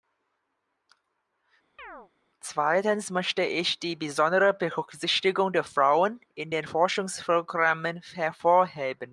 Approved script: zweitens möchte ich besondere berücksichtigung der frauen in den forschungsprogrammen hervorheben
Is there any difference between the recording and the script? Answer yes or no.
yes